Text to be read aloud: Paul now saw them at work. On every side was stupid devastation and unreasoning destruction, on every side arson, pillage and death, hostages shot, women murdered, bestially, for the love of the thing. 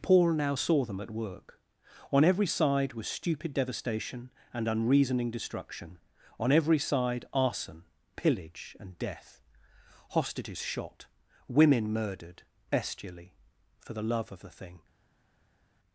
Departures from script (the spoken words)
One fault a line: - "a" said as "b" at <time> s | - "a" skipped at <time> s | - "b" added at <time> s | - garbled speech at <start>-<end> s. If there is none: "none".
none